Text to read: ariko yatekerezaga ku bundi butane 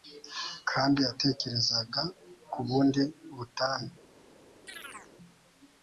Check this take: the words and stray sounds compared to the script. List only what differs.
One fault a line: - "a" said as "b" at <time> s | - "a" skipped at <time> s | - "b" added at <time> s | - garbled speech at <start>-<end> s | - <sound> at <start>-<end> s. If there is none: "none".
- "ariko" said as "kandi" at 0.7 s
- chirp at 4.7-5.1 s